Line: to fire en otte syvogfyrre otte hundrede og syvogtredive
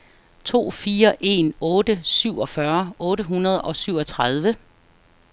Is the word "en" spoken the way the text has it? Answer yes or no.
yes